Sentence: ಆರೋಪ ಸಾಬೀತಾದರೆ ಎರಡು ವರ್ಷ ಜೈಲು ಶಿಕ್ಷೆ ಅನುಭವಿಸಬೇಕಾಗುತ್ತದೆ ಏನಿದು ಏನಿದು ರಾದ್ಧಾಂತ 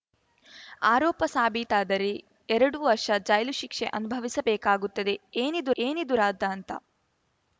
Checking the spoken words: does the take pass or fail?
pass